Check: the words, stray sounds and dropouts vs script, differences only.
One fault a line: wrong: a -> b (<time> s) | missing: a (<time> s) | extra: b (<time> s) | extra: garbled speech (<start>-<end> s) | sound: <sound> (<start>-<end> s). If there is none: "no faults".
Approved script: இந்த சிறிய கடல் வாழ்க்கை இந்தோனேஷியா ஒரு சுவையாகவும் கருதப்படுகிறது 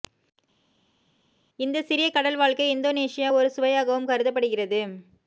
no faults